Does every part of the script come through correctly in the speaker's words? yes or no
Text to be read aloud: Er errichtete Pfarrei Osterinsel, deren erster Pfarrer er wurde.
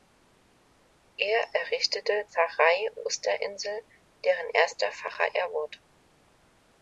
yes